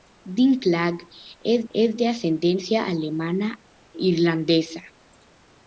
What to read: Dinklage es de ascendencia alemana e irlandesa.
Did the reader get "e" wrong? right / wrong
wrong